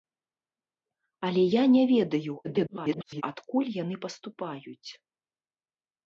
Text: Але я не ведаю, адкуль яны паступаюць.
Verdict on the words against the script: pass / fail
fail